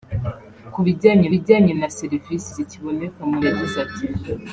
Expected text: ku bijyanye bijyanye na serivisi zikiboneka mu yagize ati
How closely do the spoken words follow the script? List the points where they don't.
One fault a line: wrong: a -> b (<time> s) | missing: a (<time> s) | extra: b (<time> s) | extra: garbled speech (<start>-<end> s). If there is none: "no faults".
no faults